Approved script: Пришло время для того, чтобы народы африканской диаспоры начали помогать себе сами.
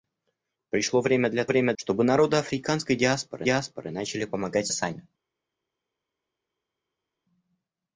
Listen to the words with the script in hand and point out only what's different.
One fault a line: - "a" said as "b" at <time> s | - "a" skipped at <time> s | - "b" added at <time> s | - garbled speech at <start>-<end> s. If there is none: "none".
- "того" said as "время" at 1.5 s
- "диаспоры" added at 3.4 s
- "себе" skipped at 4.7 s